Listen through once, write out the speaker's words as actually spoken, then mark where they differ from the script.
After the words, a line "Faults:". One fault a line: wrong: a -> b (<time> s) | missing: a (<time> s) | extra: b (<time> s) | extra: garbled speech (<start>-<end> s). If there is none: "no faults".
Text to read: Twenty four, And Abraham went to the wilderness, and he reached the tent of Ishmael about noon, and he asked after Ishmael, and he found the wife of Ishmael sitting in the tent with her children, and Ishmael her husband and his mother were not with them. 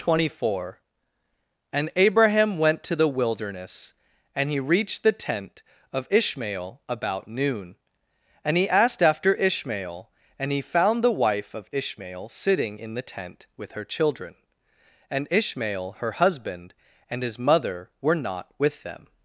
Twenty four, And Abraham went to the wilderness, and he reached the tent of Ishmael about noon, and he asked after Ishmael, and he found the wife of Ishmael sitting in the tent with her children, and Ishmael her husband and his mother were not with them.
Faults:
no faults